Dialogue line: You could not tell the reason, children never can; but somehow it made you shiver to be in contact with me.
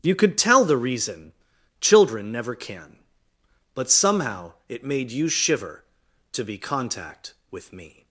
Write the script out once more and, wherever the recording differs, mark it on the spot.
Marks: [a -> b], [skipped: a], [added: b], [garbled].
You could [skipped: not] tell the reason, children never can; but somehow it made you shiver to be [skipped: in] contact with me.